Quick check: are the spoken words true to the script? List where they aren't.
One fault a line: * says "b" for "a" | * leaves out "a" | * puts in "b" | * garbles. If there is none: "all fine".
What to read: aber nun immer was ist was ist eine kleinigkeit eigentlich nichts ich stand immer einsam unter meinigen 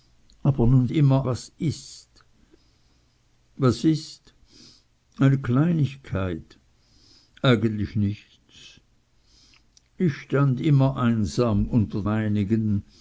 all fine